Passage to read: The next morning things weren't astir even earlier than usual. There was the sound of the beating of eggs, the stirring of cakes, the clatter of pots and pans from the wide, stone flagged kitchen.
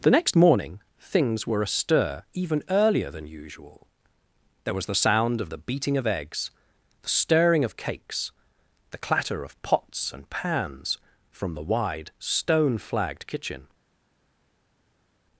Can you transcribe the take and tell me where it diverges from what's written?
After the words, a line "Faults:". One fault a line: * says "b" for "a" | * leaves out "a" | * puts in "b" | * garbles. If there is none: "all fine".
The next morning things were astir even earlier than usual. There was the sound of the beating of eggs, the stirring of cakes, the clatter of pots and pans from the wide, stone flagged kitchen.
Faults:
* says "were" for "weren't"